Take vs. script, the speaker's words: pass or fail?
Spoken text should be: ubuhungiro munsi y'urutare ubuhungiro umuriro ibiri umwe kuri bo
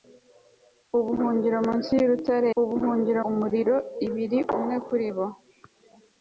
pass